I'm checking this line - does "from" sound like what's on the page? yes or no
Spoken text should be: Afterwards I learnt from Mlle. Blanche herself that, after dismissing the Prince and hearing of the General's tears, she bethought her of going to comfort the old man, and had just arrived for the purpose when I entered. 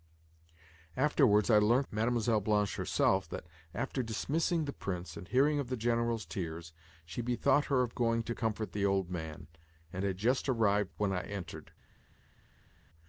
no